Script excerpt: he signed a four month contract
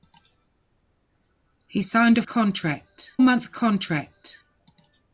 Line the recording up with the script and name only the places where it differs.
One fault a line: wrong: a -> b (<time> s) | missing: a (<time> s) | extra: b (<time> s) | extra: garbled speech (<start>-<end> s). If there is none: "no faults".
wrong: four -> contract (2.2 s)